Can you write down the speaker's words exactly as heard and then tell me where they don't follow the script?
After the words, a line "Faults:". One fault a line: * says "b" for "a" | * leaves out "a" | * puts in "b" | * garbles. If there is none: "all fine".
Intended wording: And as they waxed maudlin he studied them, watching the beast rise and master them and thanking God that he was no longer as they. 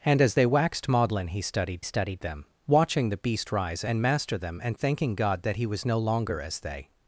And as they waxed maudlin he studied studied them, watching the beast rise and master them and thanking God that he was no longer as they.
Faults:
* puts in "studied"